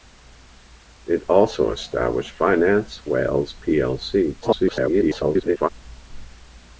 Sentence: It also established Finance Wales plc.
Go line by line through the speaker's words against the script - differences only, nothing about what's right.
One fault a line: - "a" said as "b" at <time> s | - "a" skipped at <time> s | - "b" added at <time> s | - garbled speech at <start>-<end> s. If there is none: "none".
- garbled speech at 4.4-5.7 s